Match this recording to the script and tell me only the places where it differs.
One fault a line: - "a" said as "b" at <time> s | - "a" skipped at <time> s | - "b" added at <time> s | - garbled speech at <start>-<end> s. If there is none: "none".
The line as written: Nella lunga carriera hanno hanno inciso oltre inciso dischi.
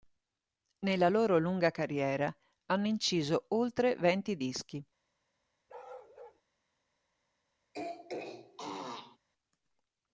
- "loro" added at 1.1 s
- "hanno" skipped at 2.9 s
- "inciso" said as "venti" at 4.0 s